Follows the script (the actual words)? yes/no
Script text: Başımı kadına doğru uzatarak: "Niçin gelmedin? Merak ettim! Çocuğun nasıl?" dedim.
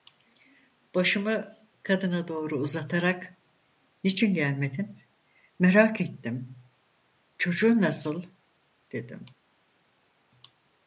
yes